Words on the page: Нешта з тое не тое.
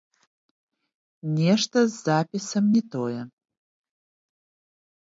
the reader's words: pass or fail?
fail